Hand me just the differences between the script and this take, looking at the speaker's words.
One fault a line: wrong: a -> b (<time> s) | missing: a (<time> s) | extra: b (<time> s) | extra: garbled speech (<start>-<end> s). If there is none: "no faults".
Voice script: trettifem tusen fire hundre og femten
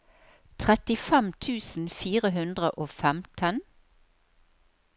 no faults